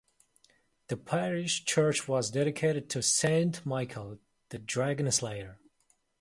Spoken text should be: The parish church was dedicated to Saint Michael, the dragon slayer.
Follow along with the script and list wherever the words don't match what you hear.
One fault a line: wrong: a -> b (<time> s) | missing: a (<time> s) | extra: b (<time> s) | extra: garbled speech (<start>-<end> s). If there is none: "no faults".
no faults